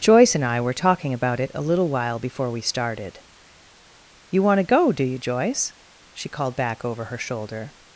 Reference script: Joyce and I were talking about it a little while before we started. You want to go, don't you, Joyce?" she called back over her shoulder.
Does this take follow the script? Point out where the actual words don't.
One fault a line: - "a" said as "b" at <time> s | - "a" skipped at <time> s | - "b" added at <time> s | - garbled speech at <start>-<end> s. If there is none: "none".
- "don't" said as "do" at 4.9 s